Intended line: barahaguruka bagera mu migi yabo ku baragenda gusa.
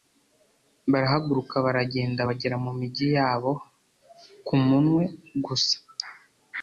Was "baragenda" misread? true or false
true